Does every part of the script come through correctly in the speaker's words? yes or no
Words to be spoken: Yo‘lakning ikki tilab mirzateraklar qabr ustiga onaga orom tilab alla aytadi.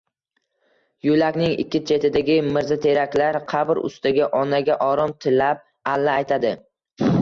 no